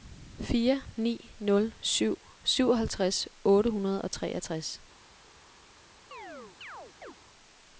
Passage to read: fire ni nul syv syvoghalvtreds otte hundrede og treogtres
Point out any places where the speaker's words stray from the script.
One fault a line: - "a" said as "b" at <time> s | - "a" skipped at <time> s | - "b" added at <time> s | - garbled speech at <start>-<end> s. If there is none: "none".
none